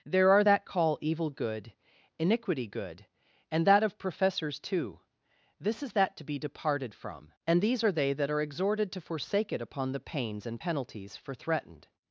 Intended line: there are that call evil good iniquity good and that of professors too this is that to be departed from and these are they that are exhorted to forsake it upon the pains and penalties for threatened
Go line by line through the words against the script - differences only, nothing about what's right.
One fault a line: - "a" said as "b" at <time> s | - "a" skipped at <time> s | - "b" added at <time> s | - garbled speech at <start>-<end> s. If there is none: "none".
none